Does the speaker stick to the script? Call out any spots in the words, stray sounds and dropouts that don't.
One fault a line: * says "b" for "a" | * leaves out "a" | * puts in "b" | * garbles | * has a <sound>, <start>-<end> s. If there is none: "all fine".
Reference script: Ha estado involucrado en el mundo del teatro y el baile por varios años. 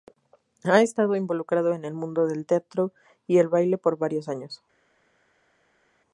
all fine